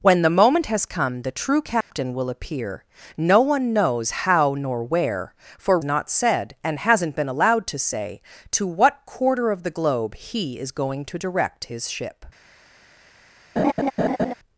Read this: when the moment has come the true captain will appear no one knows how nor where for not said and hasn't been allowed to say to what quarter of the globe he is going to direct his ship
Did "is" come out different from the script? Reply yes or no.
no